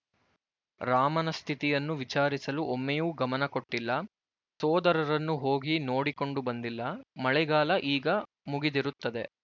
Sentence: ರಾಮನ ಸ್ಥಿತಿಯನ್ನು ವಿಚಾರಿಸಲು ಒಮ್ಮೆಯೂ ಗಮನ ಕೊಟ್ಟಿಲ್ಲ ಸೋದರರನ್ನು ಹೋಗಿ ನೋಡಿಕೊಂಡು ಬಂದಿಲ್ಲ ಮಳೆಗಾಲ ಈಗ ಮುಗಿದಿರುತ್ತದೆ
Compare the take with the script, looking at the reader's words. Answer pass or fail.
pass